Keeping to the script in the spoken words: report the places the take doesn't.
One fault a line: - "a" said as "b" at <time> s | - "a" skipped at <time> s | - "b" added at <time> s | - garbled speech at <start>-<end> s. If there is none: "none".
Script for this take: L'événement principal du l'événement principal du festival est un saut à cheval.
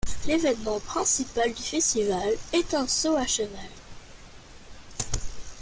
- "l'événement principal du" skipped at 1.6 s